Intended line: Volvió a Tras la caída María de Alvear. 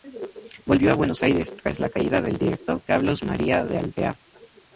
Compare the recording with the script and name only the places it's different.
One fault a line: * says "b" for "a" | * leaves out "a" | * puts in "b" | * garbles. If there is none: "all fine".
* puts in "Buenos Aires"
* puts in "del Director Carlos"